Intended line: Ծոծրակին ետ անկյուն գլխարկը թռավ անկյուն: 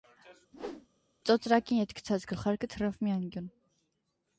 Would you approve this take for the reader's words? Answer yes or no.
no